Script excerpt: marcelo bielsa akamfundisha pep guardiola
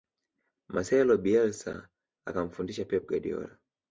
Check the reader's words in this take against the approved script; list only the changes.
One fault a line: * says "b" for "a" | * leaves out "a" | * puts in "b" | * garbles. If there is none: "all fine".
all fine